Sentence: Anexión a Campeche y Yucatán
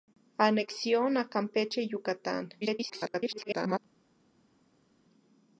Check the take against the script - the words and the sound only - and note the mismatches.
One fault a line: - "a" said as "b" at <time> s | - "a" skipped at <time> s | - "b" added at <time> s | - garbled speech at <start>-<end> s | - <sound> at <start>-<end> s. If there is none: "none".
- garbled speech at 2.6-3.8 s